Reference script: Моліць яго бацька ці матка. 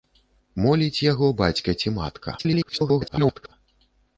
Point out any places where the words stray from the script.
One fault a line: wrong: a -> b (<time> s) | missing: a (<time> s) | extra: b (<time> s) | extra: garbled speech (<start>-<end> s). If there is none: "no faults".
extra: garbled speech (2.4-3.5 s)